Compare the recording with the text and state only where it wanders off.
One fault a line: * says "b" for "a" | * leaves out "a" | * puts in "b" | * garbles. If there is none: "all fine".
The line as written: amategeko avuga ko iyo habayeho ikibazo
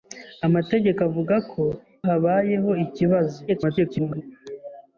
* leaves out "iyo"
* garbles